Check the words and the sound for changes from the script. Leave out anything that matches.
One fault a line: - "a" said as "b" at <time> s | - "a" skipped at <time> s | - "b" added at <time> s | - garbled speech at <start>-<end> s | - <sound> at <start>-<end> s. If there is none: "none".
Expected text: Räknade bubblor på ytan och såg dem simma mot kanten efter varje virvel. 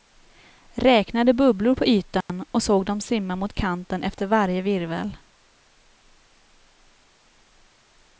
- dropout at 2.2-2.3 s